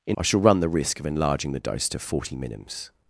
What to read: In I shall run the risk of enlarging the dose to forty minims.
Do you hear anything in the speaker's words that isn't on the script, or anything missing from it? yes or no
no